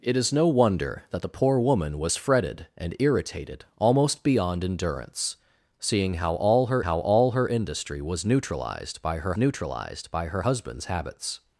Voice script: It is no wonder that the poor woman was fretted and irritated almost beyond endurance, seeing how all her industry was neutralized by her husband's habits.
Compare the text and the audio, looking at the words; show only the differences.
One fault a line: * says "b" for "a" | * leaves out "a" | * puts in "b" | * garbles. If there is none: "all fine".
* puts in "how all her"
* puts in "neutralized by her"